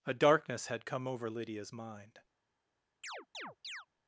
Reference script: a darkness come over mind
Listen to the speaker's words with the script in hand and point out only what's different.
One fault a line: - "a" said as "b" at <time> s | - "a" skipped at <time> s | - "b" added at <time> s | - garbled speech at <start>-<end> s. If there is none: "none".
- "had" added at 0.7 s
- "lydia's" added at 1.3 s